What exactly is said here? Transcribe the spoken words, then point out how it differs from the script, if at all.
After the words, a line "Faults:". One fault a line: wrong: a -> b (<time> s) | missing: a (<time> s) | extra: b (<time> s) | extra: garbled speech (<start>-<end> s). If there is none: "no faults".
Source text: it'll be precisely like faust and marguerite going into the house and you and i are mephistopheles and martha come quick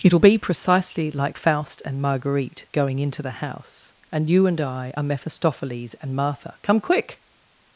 it'll be precisely like faust and marguerite going into the house and you and i are mephistopheles and martha come quick
Faults:
no faults